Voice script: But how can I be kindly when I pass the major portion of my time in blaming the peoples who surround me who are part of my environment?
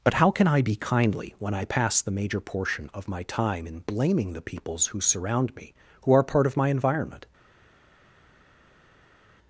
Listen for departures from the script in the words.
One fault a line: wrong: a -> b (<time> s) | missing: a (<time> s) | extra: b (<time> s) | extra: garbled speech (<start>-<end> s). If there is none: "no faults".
no faults